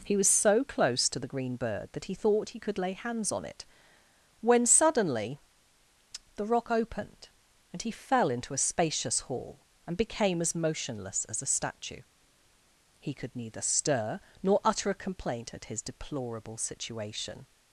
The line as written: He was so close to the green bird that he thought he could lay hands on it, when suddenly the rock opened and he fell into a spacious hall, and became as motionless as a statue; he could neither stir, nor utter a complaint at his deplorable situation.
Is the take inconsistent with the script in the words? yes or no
no